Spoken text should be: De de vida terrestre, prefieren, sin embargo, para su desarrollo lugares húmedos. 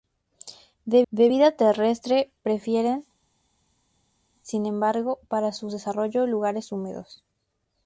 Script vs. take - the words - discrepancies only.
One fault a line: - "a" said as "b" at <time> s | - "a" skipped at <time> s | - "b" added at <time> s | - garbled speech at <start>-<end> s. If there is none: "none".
none